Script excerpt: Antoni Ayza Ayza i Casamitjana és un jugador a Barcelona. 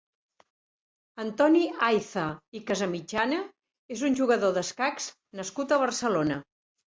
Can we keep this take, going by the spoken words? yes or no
no